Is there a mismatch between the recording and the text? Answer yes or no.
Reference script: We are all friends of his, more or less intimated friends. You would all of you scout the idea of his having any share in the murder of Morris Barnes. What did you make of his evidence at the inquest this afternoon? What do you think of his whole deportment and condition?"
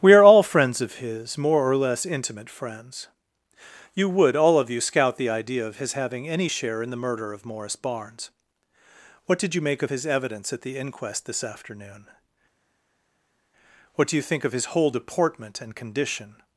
yes